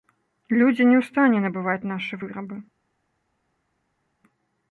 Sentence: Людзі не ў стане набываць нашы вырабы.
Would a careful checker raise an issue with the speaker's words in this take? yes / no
no